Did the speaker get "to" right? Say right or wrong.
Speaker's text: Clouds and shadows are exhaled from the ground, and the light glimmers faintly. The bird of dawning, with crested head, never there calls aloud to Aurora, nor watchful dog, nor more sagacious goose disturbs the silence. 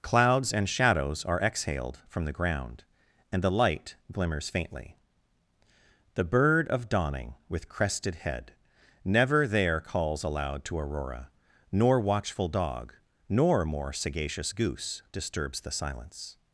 right